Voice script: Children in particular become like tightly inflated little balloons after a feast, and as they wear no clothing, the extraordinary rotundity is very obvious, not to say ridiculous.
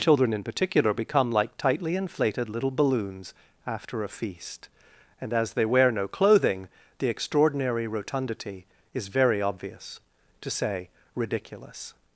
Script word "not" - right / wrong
wrong